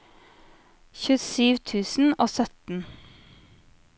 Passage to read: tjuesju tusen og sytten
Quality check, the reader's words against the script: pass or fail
pass